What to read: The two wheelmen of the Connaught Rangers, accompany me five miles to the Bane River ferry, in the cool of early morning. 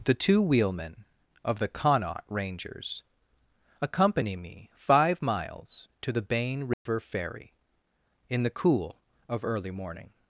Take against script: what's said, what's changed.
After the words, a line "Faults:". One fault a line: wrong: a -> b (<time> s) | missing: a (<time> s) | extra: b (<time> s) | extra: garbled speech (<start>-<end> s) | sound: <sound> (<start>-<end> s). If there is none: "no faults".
The two wheelmen of the Connaught Rangers, accompany me five miles to the Bane River ferry, in the cool of early morning.
Faults:
sound: dropout (6.7-6.9 s)